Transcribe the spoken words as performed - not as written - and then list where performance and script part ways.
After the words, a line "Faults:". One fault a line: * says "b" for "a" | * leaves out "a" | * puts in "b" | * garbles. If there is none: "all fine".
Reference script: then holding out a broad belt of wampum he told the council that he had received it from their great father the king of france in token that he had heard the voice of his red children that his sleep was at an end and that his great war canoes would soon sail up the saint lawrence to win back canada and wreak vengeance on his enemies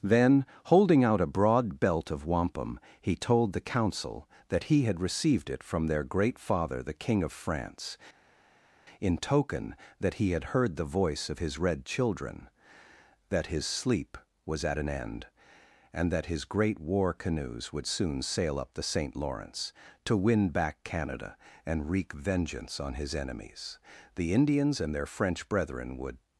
then holding out a broad belt of wampum he told the council that he had received it from their great father the king of france in token that he had heard the voice of his red children that his sleep was at an end and that his great war canoes would soon sail up the saint lawrence to win back canada and wreak vengeance on his enemies the indians and their french brethren would
Faults:
* puts in "the indians and their french brethren would"